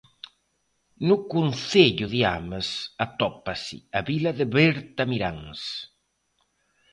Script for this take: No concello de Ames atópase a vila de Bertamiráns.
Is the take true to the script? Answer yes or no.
yes